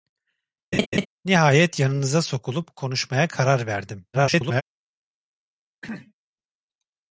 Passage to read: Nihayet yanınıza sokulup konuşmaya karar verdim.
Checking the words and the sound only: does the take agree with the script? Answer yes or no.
no